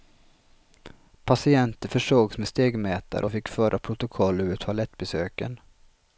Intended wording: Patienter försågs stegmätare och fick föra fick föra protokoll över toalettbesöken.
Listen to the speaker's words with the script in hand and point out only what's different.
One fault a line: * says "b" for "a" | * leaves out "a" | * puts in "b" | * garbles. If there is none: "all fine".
* puts in "med"
* leaves out "fick föra"